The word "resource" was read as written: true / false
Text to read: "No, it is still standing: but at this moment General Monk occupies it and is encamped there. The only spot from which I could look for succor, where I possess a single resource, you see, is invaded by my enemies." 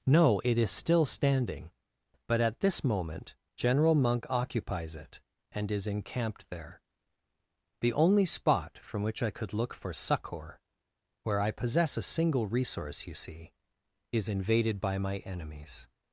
true